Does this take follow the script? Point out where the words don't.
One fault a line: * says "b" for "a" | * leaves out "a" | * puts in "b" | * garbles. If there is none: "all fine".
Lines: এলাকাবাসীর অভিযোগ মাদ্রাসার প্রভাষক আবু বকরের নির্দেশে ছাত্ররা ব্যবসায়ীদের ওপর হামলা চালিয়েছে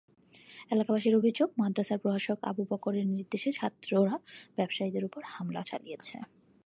all fine